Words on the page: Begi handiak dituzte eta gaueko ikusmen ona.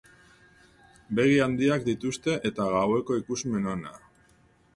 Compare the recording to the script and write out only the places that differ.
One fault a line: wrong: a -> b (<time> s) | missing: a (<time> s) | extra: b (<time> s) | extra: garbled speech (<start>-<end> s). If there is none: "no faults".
no faults